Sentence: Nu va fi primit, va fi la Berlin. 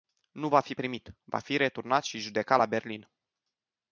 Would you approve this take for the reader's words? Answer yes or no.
no